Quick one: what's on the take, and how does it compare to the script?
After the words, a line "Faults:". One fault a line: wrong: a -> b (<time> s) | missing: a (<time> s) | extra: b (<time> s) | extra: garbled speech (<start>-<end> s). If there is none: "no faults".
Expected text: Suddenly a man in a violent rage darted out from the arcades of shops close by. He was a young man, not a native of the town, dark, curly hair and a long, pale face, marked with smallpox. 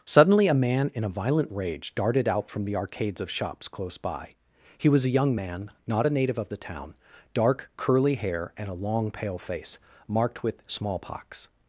Suddenly a man in a violent rage darted out from the arcades of shops close by. He was a young man, not a native of the town, dark, curly hair and a long, pale face, marked with smallpox.
Faults:
no faults